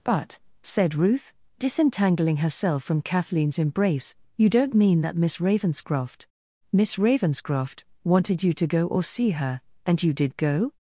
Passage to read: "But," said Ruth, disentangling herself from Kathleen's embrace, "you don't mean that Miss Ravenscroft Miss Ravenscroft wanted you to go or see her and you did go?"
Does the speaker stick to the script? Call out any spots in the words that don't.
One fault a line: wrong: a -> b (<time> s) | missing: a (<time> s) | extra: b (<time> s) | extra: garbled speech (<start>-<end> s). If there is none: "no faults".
no faults